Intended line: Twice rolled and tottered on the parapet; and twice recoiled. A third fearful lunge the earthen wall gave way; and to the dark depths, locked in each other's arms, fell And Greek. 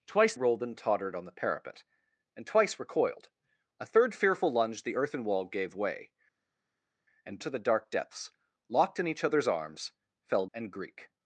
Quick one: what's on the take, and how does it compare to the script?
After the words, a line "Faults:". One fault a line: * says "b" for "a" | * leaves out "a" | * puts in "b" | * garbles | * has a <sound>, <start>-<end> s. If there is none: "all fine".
Twice rolled and tottered on the parapet; and twice recoiled. A third fearful lunge the earthen wall gave way; and to the dark depths, locked in each other's arms, fell And Greek.
Faults:
all fine